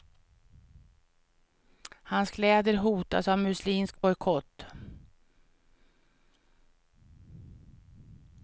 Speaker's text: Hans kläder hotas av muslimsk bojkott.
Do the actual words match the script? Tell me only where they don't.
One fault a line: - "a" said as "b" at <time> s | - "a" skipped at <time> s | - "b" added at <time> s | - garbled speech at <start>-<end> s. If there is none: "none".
none